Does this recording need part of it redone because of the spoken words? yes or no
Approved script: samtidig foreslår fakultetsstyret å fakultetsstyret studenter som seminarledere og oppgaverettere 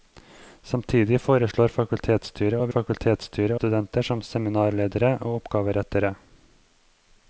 no